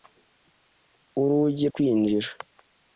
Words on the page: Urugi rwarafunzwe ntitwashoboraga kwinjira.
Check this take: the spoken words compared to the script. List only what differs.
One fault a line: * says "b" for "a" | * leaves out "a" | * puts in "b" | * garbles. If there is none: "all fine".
* leaves out "rwarafunzwe ntitwashoboraga"